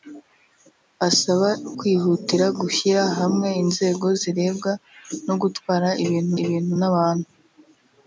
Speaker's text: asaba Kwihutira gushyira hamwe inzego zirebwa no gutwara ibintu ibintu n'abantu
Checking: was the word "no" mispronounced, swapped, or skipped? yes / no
no